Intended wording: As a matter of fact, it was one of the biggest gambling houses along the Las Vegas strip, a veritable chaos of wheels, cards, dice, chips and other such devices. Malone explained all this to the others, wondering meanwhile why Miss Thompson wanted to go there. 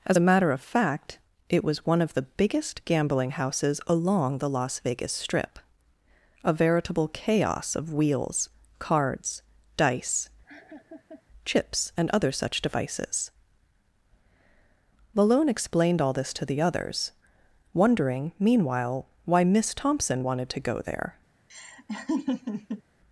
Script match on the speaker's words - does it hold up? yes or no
yes